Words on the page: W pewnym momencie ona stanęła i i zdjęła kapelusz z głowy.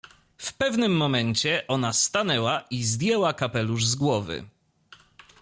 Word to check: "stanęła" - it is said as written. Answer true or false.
true